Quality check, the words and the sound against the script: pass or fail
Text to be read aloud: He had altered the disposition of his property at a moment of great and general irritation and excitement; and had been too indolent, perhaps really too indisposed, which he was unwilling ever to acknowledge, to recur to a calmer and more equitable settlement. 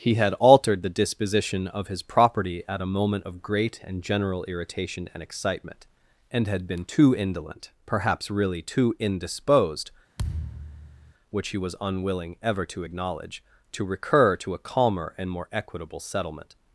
fail